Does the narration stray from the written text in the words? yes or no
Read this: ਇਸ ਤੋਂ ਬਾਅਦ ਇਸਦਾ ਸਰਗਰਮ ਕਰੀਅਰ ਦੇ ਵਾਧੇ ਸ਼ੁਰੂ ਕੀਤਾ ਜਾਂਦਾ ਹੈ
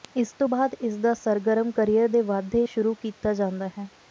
no